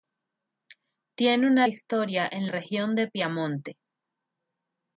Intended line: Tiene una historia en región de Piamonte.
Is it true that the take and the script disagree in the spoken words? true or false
false